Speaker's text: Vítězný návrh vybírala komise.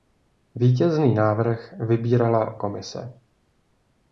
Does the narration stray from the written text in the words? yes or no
no